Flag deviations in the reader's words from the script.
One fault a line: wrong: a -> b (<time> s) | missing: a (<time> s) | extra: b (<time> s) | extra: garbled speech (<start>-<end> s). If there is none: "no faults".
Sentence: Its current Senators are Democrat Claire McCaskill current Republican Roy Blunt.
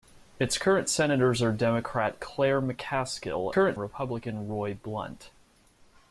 no faults